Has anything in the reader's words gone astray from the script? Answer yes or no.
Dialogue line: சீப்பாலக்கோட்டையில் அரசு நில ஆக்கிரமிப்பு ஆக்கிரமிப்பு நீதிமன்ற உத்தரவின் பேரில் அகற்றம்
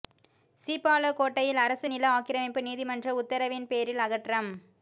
yes